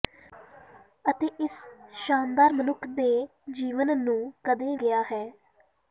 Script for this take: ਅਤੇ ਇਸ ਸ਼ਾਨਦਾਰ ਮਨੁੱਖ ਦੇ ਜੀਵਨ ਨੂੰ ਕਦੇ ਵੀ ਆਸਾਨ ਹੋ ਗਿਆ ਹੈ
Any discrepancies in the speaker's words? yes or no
yes